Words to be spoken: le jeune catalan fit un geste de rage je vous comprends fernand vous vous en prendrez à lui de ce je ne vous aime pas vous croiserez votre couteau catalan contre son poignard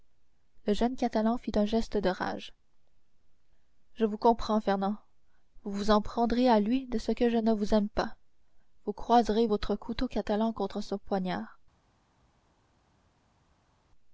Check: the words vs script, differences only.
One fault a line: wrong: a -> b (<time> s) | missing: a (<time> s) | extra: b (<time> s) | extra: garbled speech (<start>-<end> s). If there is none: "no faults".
extra: que (7.1 s)